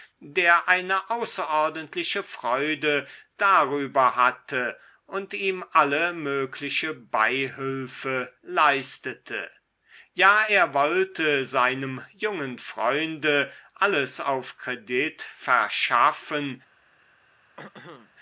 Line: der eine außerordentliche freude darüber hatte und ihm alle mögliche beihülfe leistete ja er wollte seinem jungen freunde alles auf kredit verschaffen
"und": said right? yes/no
yes